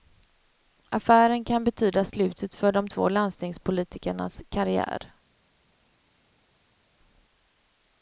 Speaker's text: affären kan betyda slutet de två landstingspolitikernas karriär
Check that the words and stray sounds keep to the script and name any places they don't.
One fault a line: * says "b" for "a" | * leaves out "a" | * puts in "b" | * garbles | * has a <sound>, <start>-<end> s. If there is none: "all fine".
* puts in "för"